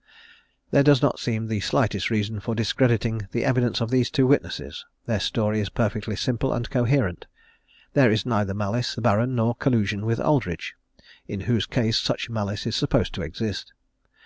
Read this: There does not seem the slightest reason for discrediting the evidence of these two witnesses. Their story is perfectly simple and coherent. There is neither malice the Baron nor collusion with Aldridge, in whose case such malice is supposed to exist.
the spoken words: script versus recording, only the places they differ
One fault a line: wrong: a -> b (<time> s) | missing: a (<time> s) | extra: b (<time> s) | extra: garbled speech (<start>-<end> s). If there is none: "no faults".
no faults